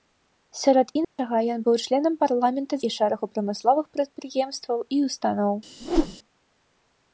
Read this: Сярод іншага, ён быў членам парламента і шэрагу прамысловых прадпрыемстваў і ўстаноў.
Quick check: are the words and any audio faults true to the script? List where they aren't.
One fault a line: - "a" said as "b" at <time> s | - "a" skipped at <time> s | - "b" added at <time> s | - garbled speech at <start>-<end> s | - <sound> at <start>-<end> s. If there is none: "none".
- dropout at 1.0-1.2 s
- whoosh at 5.8-6.2 s